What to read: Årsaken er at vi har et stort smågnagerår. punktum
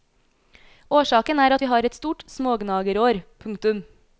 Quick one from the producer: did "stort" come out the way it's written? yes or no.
yes